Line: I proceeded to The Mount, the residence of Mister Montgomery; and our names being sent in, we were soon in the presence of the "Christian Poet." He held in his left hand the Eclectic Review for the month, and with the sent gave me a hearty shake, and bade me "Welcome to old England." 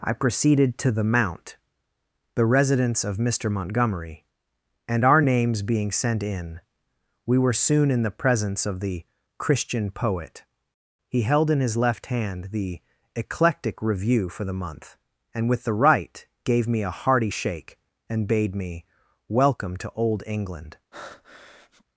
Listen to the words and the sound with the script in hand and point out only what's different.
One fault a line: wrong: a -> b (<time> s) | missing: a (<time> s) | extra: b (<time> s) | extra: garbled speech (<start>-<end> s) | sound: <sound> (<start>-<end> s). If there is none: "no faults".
wrong: sent -> right (15.7 s)
sound: breath (20.9-21.8 s)